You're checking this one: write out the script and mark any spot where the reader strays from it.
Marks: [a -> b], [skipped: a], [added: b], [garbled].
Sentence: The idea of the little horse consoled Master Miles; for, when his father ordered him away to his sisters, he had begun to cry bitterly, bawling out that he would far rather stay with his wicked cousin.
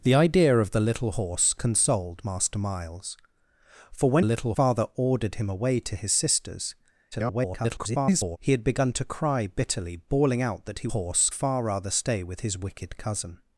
The idea of the little horse consoled Master Miles; for, when [his -> little] father ordered him away to his sisters, [garbled] he had begun to cry bitterly, bawling out that he [would -> horse] far rather stay with his wicked cousin.